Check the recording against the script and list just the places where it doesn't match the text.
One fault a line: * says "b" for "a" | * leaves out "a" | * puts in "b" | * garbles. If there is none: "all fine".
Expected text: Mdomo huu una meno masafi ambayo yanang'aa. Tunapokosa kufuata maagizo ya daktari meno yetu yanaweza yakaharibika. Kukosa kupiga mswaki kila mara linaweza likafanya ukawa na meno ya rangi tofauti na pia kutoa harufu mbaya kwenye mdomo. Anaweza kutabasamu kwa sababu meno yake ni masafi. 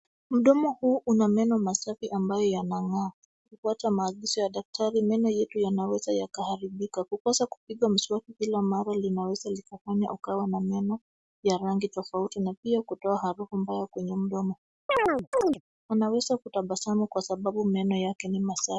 * leaves out "Tunapokosa"